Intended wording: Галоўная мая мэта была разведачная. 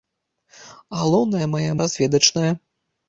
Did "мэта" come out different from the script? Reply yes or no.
yes